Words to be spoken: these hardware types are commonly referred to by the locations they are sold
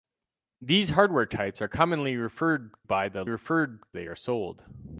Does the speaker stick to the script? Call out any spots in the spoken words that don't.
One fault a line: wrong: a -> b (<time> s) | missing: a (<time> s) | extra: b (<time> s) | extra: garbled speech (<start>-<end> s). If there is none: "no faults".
missing: to (2.7 s)
wrong: locations -> referred (3.3 s)